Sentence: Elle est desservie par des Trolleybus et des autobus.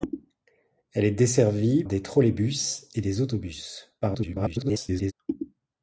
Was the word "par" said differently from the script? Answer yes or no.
yes